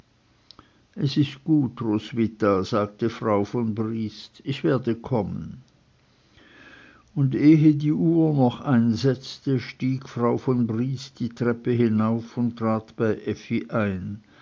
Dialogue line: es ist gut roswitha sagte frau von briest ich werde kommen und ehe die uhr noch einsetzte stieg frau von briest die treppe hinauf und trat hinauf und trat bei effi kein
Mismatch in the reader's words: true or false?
true